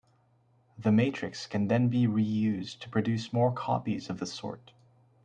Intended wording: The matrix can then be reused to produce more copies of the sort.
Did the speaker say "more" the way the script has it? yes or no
yes